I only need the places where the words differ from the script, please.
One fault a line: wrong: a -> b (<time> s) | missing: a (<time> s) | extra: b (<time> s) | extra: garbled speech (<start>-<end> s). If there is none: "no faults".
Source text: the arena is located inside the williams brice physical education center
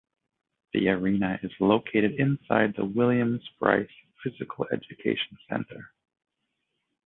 no faults